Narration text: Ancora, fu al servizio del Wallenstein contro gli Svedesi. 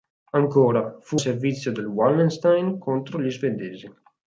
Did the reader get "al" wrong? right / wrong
wrong